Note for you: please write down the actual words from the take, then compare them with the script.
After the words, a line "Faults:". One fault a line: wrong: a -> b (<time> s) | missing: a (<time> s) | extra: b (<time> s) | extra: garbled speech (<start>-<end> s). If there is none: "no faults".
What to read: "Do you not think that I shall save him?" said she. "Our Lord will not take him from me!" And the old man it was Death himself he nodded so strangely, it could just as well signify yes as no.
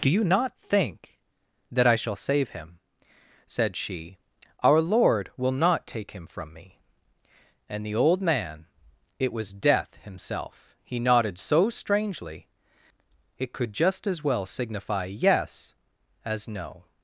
"Do you not think that I shall save him?" said she. "Our Lord will not take him from me!" And the old man it was Death himself he nodded so strangely, it could just as well signify yes as no.
Faults:
no faults